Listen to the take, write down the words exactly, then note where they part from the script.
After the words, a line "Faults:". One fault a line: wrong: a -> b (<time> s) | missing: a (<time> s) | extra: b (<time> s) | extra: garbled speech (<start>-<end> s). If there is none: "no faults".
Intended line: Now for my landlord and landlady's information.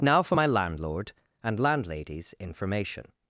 Now for my landlord and landlady's information.
Faults:
no faults